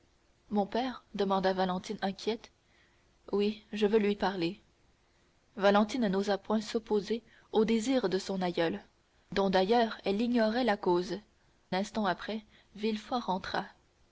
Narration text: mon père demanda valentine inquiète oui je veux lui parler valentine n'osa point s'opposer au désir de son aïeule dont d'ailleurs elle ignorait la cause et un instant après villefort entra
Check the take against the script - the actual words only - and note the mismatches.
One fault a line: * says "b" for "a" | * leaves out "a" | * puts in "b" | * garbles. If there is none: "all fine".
* leaves out "et un"